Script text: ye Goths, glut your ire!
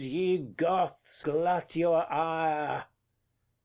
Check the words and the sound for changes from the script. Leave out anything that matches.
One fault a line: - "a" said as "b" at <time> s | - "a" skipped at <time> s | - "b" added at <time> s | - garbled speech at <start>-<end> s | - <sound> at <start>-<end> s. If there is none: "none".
none